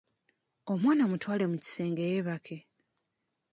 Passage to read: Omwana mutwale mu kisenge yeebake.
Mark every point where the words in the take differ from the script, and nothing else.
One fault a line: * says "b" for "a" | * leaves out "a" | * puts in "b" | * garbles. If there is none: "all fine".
all fine